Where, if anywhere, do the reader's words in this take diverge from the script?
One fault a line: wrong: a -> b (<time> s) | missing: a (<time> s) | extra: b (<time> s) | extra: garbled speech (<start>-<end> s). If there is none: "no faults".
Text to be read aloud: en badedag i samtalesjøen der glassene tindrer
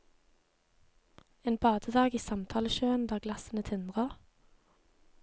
no faults